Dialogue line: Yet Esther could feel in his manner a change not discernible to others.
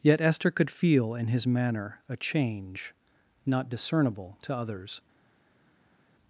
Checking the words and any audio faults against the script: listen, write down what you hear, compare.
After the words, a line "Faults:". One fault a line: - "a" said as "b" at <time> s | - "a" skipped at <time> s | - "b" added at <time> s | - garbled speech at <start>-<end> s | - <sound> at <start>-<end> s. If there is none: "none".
Yet Esther could feel in his manner a change not discernible to others.
Faults:
none